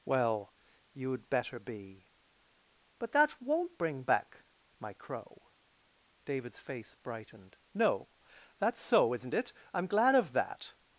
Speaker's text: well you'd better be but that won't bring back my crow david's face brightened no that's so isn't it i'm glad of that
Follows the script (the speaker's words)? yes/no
yes